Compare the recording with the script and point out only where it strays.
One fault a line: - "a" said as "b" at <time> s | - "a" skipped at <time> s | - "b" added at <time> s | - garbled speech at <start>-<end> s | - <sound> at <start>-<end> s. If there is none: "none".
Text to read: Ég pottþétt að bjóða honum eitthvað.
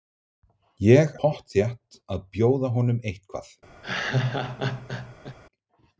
- laugh at 3.8-5.4 s